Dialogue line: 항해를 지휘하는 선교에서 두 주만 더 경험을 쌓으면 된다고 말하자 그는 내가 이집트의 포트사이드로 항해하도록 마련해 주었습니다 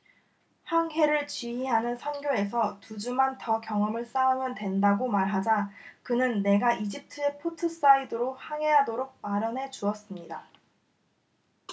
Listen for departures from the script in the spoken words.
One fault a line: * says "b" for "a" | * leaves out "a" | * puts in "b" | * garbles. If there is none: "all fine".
all fine